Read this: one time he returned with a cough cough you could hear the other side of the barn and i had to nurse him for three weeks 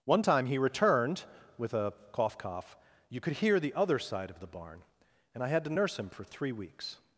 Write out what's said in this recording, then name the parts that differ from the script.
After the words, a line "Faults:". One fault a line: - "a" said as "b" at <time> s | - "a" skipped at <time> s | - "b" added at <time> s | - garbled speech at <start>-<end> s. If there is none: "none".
one time he returned with a cough cough you could hear the other side of the barn and i had to nurse him for three weeks
Faults:
none